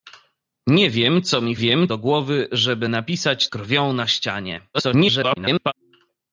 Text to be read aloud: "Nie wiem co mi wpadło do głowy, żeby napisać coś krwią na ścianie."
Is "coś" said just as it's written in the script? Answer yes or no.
no